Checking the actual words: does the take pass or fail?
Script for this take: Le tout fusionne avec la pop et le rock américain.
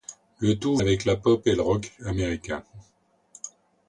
fail